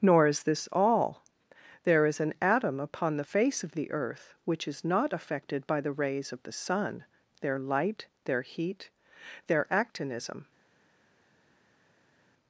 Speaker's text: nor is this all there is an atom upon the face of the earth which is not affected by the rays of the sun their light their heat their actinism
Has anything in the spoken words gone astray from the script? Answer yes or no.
no